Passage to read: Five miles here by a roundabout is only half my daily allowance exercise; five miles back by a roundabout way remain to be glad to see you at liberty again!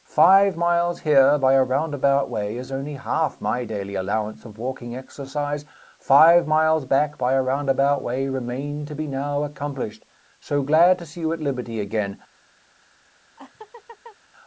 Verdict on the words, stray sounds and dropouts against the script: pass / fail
fail